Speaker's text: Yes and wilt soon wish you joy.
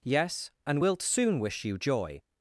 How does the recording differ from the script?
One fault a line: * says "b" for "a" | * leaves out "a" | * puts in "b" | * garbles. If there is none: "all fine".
all fine